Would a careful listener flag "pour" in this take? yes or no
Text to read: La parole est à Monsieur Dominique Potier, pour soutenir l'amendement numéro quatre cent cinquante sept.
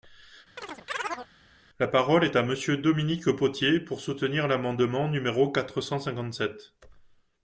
no